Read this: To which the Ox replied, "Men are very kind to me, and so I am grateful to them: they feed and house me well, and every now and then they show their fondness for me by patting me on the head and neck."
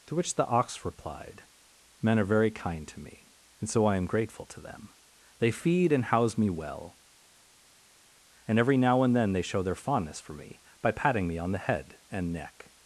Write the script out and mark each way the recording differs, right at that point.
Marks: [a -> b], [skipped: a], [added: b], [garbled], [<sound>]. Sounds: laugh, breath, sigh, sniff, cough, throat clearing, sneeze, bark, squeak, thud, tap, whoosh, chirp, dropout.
To which the Ox replied, "Men are very kind to me, and so I am grateful to them: they feed and house me well, and every now and then they show their fondness for me by patting me on the head and neck."